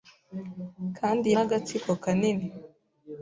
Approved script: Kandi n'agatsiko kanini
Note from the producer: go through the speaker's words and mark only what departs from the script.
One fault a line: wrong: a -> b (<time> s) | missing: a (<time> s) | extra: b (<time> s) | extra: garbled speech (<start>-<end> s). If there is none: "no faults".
no faults